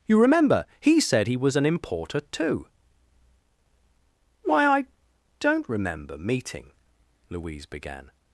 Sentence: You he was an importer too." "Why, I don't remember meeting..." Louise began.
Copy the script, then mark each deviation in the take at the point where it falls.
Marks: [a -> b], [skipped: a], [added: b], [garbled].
You [added: remember he said] he was an importer too." "Why, I don't remember meeting..." Louise began.